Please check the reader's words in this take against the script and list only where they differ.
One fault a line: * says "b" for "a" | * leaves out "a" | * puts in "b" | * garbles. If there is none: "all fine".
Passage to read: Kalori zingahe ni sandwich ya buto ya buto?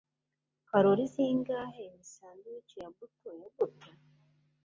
all fine